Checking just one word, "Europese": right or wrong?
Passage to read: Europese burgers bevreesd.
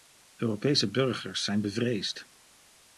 right